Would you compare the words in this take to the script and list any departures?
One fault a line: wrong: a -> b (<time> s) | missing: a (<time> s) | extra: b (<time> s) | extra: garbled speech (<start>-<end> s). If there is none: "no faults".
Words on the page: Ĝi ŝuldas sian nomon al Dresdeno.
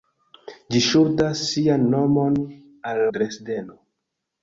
no faults